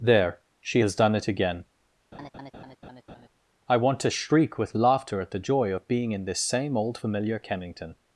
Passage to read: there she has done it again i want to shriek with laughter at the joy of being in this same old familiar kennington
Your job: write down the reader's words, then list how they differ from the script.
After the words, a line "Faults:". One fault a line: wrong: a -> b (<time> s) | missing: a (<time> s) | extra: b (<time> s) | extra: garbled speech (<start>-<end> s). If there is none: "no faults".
there she has done it again i want to shriek with laughter at the joy of being in this same old familiar kennington
Faults:
no faults